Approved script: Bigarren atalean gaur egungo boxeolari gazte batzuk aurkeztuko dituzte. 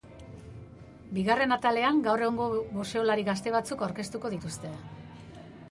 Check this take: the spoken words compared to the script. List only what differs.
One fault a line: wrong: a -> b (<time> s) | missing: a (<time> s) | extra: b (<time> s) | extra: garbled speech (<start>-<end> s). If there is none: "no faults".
no faults